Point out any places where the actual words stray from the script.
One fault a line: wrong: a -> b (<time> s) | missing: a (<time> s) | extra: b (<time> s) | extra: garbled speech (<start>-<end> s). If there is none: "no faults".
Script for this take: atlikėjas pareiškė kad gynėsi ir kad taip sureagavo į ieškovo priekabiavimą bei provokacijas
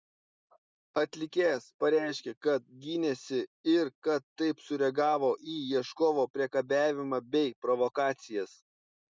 no faults